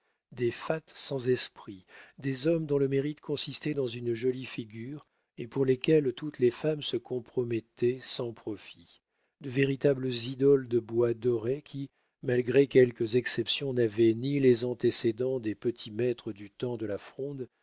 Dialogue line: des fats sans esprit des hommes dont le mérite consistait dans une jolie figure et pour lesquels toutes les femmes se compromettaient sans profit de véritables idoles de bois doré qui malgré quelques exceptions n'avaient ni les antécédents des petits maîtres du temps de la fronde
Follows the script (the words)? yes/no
yes